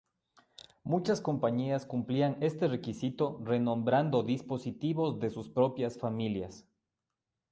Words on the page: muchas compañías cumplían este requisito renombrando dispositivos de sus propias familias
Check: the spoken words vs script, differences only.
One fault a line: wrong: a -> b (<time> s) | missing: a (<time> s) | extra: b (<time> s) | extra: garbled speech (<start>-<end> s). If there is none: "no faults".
no faults